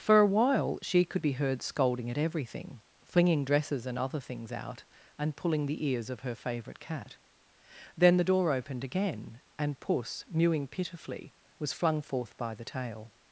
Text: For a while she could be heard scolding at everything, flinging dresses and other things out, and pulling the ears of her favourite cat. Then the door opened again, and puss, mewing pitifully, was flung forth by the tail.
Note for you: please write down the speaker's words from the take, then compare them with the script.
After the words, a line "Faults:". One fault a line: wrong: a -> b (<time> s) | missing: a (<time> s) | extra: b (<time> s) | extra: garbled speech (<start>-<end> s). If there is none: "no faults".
For a while she could be heard scolding at everything, flinging dresses and other things out, and pulling the ears of her favourite cat. Then the door opened again, and puss, mewing pitifully, was flung forth by the tail.
Faults:
no faults